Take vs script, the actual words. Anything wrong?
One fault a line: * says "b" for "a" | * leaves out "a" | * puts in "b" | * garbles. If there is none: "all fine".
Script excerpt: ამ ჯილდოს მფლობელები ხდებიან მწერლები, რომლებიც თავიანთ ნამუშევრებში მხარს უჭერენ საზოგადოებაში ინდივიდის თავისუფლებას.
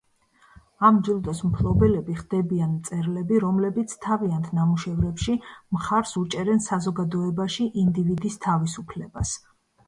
all fine